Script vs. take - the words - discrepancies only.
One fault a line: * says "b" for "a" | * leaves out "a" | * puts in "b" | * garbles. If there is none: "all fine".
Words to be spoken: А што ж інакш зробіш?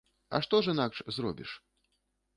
all fine